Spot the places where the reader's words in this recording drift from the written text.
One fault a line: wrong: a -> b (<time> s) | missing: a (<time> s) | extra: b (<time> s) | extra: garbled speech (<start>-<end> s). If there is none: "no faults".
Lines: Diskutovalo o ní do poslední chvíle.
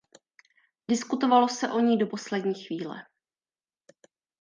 extra: se (1.5 s)